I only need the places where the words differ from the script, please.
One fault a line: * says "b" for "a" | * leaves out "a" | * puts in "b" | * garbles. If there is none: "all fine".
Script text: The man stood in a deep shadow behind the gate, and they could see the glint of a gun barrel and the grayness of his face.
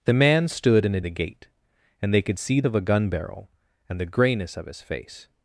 * leaves out "deep shadow behind"
* leaves out "the glint"